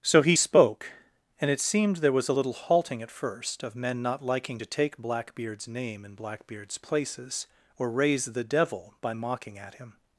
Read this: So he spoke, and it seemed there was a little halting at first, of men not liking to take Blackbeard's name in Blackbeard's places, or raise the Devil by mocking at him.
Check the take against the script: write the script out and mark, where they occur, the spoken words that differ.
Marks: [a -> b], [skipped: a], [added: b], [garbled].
So he spoke, and it seemed there was a little halting at first, of men not liking to take Blackbeard's name in Blackbeard's places, or raise the Devil by mocking at him.